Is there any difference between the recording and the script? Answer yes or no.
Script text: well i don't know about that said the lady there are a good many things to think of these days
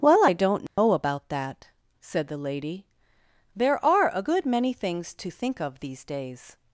no